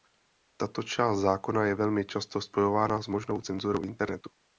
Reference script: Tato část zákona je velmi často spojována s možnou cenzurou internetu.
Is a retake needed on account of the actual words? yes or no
no